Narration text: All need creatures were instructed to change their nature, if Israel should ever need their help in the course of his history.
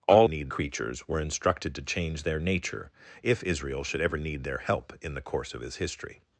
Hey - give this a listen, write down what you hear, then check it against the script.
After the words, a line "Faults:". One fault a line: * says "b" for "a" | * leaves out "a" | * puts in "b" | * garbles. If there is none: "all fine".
All need creatures were instructed to change their nature, if Israel should ever need their help in the course of his history.
Faults:
all fine